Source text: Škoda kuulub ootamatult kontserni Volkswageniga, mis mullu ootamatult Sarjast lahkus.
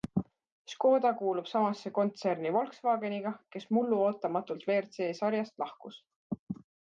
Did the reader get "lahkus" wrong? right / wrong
right